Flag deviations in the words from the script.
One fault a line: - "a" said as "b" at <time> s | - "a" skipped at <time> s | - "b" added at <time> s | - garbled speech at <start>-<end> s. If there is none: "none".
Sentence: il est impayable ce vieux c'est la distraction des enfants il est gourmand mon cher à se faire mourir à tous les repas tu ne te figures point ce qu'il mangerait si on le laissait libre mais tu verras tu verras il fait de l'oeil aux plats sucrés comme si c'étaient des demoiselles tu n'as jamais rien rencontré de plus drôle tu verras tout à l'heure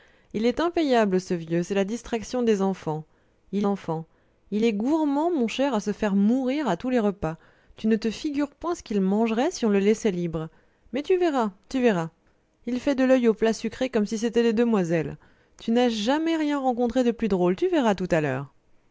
- "enfants il" added at 3.7 s